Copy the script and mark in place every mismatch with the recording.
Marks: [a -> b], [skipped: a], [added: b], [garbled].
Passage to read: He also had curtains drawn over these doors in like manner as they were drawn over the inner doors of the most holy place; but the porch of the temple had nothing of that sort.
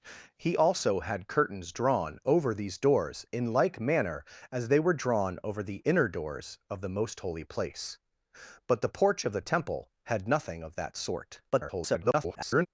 He also had curtains drawn over these doors in like manner as they were drawn over the inner doors of the most holy place; but the porch of the temple had nothing of that sort. [garbled]